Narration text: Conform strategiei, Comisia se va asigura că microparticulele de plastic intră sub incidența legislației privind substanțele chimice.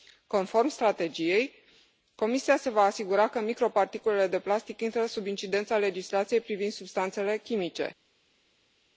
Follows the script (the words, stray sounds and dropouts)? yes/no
yes